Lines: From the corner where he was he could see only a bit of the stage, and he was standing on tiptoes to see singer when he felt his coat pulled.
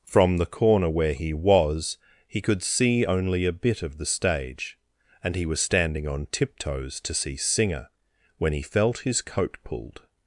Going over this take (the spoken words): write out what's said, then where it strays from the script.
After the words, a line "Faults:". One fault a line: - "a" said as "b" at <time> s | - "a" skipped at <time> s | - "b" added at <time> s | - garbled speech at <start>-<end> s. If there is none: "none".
From the corner where he was he could see only a bit of the stage, and he was standing on tiptoes to see singer when he felt his coat pulled.
Faults:
none